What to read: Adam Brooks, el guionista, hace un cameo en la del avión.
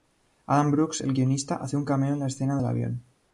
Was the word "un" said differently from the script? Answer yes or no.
no